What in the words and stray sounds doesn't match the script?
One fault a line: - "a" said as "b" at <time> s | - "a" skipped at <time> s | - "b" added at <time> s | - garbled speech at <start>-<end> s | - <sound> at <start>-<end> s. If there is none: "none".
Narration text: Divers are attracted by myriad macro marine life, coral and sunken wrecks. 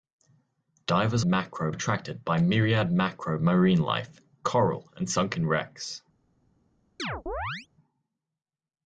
- "are" said as "macro" at 1.2 s
- chirp at 7.0-7.7 s